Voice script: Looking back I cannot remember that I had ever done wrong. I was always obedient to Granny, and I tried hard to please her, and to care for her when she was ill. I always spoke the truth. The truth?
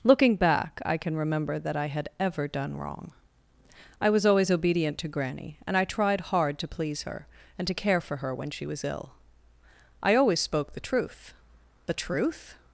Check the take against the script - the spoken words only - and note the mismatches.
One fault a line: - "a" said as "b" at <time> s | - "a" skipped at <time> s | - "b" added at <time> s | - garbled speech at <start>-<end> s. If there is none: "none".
- "cannot" said as "can" at 1.0 s